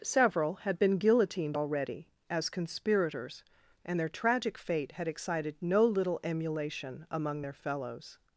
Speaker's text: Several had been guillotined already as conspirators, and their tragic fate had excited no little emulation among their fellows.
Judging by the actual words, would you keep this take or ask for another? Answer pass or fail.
pass